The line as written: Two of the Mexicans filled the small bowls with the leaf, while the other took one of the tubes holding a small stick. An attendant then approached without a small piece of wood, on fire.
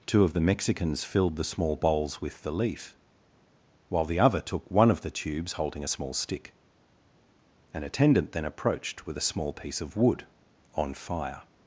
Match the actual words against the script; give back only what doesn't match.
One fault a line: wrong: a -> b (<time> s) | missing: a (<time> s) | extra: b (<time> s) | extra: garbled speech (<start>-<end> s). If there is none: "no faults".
wrong: without -> with (9.1 s)